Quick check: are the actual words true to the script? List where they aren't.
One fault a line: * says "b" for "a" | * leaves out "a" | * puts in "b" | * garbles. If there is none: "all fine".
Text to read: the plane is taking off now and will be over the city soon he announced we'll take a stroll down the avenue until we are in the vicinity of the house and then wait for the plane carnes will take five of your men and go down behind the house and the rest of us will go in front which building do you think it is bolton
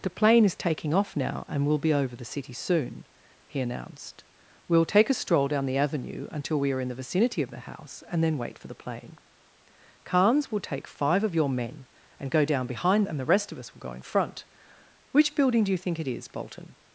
* leaves out "the house"